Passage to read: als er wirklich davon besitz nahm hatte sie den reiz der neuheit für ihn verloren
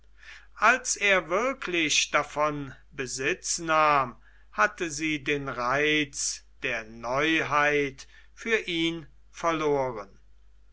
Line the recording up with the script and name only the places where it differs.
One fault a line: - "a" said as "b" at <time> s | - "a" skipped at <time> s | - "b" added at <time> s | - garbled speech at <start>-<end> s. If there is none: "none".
none